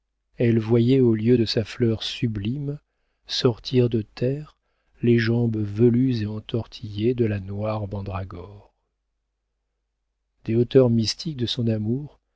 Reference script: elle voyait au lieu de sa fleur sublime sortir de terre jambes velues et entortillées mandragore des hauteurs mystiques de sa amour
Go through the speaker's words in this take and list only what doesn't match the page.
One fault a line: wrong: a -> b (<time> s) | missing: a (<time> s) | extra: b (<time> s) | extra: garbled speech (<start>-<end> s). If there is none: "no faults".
extra: les (5.0 s)
extra: de la noire (7.1 s)
wrong: sa -> son (11.5 s)